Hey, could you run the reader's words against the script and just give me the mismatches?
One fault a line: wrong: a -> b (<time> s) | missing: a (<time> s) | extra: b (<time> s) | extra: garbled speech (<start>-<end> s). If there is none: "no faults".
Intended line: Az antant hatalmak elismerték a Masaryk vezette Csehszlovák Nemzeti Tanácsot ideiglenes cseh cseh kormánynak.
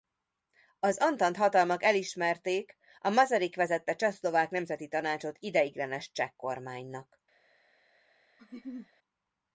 missing: cseh (6.3 s)